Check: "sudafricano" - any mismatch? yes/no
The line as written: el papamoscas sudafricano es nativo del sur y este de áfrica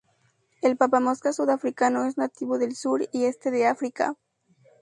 no